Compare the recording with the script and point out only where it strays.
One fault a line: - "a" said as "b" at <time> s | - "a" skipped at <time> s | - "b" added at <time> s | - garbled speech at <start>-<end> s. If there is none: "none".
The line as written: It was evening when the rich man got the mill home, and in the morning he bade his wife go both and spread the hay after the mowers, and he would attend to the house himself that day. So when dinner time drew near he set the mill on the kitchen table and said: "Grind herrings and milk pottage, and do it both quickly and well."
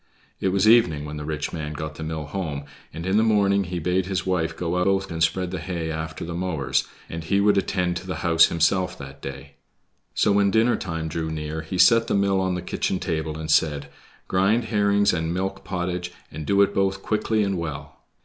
none